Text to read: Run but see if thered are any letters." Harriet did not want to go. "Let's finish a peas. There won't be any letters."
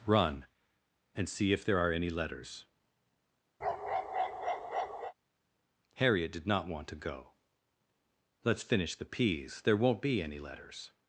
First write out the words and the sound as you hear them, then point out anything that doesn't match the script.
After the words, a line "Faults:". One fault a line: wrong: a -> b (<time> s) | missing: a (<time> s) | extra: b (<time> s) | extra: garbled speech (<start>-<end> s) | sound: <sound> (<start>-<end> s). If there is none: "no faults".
Run and see if there are any letters." Harriet did not want to go. "Let's finish the peas. There won't be any letters."
Faults:
wrong: but -> and (1.1 s)
wrong: thered -> there (1.6 s)
sound: bark (3.6-5.1 s)
wrong: a -> the (9.0 s)